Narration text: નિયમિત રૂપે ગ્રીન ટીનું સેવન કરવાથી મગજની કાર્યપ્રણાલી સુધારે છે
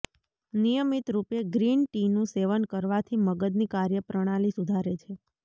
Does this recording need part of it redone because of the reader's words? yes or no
no